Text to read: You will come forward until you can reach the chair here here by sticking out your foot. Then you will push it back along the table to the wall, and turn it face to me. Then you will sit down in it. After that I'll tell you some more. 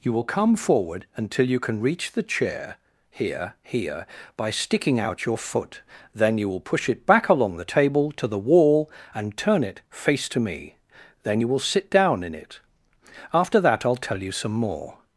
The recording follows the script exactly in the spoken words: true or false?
true